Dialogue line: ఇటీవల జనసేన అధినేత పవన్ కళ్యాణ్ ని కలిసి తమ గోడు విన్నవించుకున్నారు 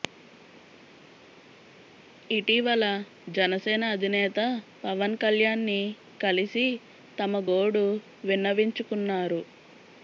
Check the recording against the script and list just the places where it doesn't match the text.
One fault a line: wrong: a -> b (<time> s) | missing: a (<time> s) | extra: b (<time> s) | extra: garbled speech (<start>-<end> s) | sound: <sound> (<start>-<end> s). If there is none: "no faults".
no faults